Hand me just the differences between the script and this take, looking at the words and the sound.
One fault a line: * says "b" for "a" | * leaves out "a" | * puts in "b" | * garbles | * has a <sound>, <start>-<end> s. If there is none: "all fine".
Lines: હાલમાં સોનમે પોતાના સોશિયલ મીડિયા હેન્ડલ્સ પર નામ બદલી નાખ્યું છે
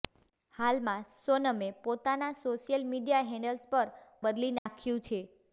* leaves out "નામ"
* has a dropout, 4.6-4.7 s